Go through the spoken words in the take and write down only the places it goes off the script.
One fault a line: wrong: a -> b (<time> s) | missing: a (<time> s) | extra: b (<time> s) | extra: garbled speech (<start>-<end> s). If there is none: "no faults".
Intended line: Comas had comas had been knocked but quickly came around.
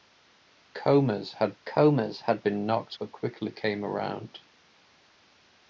no faults